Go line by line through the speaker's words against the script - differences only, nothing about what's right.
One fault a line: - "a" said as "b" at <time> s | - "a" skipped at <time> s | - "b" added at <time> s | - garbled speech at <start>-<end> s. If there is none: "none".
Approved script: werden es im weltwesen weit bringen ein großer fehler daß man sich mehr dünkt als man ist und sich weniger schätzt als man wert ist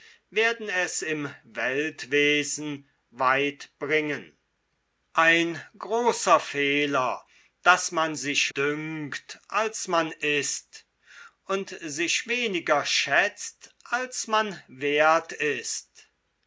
- "mehr" skipped at 8.5 s